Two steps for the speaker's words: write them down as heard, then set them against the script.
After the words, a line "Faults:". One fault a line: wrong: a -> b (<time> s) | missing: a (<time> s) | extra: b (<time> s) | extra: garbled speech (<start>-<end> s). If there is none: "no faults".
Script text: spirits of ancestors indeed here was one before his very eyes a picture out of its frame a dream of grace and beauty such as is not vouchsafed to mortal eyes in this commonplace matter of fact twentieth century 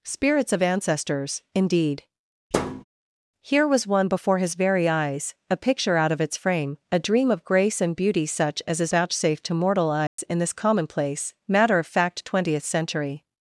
spirits of ancestors indeed here was one before his very eyes a picture out of its frame a dream of grace and beauty such as is vouchsafed to mortal eyes in this commonplace matter of fact twentieth century
Faults:
missing: not (8.9 s)